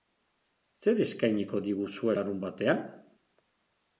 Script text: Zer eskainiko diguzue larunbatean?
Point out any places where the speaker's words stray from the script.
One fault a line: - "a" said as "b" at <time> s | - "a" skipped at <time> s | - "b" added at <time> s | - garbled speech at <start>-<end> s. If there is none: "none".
none